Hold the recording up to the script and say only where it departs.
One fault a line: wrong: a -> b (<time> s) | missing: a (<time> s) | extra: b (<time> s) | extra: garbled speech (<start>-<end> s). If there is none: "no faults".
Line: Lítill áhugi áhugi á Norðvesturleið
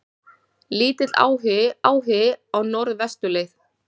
no faults